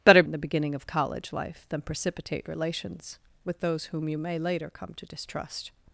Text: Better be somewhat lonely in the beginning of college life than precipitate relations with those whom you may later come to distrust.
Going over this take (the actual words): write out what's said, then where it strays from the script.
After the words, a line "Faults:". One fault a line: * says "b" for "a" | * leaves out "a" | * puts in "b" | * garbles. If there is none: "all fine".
Better in the beginning of college life than precipitate relations with those whom you may later come to distrust.
Faults:
* leaves out "be somewhat lonely"